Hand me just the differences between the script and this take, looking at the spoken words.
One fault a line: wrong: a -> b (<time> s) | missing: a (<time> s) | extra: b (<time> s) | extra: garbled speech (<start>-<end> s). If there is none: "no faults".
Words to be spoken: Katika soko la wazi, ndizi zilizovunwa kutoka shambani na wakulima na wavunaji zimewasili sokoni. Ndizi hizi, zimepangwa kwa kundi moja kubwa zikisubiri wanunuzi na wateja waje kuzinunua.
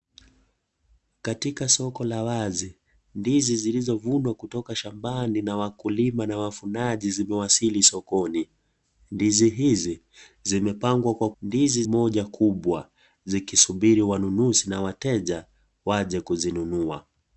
wrong: kundi -> ndizi (11.4 s)